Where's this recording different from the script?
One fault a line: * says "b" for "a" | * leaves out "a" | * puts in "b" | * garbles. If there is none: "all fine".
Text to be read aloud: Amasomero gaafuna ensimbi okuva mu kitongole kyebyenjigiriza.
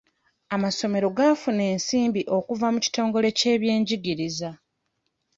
all fine